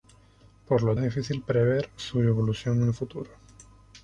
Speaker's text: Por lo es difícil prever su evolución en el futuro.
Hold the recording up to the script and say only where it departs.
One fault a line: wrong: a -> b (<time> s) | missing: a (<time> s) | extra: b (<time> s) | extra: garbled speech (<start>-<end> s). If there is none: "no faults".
no faults